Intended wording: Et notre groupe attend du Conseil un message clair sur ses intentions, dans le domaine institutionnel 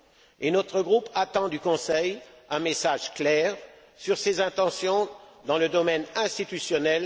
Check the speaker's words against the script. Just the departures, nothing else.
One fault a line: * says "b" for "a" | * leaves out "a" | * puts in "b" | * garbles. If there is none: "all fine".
all fine